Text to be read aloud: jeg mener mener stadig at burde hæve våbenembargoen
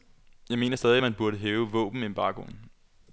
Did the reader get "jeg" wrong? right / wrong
right